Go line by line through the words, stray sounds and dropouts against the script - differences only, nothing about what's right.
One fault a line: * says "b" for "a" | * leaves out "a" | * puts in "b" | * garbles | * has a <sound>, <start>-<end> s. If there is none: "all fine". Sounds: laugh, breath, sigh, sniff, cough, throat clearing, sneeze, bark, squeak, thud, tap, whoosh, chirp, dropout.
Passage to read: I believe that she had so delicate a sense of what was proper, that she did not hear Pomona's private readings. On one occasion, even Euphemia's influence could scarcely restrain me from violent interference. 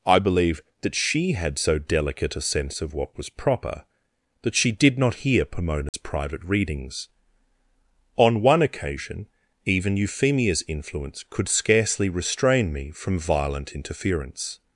* has a dropout, 5.9-5.9 s